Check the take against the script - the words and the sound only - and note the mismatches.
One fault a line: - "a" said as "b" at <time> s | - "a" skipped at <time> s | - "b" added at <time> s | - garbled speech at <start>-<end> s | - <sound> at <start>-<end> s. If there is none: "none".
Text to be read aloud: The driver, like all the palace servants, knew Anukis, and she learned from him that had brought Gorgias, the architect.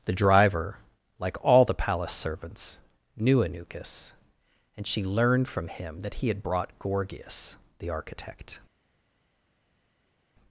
- "he" added at 6.1 s